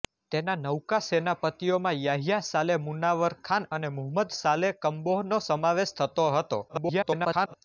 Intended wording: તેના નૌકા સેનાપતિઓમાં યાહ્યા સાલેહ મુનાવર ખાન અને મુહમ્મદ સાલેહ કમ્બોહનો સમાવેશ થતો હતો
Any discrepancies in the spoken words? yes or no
yes